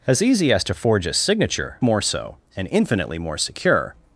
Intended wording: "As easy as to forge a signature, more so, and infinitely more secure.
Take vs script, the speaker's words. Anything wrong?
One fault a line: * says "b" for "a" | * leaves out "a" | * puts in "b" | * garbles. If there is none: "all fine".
all fine